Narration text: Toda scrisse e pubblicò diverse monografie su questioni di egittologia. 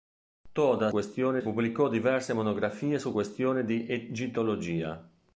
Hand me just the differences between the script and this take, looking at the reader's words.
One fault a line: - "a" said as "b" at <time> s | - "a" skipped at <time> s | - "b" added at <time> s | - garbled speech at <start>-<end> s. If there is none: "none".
- "scrisse" said as "questioni" at 0.9 s